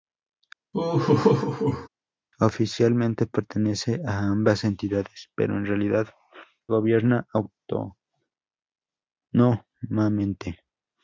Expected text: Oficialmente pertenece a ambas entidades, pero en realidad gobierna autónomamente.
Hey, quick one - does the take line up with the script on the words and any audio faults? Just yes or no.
no